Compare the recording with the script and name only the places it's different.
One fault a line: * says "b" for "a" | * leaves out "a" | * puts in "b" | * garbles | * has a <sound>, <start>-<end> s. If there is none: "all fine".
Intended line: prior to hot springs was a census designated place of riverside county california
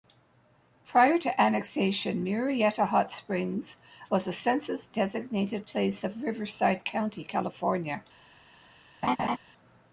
* puts in "annexation murrieta"
* has a laugh, 9.0-9.4 s